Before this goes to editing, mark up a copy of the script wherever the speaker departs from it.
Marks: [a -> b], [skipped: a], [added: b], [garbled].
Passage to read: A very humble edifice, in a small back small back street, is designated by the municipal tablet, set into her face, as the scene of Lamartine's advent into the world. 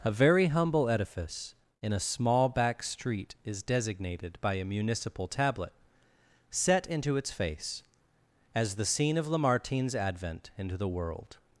A very humble edifice, in a small back [skipped: small back] street, is designated by [the -> a] municipal tablet, set into [her -> its] face, as the scene of Lamartine's advent into the world.